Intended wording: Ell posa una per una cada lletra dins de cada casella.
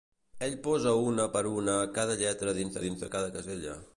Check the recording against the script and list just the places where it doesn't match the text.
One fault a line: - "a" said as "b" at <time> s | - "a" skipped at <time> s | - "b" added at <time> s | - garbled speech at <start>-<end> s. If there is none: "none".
- "dins" added at 2.9 s